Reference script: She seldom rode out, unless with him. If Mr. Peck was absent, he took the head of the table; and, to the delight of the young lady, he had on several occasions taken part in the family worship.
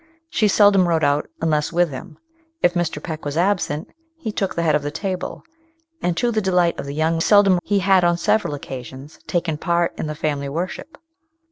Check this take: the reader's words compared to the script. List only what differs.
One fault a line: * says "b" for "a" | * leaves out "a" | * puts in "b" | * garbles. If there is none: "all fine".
* says "seldom" for "lady"